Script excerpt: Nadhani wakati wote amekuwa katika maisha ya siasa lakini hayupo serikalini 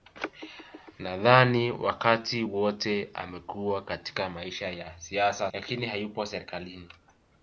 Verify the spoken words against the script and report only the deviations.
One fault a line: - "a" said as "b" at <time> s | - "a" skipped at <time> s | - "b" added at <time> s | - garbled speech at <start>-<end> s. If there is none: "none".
none